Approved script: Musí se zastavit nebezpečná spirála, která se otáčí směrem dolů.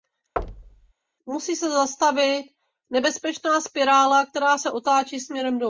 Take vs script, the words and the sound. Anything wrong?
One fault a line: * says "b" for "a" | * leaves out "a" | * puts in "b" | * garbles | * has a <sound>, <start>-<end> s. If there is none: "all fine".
* has a thud, 0.4-0.9 s